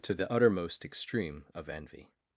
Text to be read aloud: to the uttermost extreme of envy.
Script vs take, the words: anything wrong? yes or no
no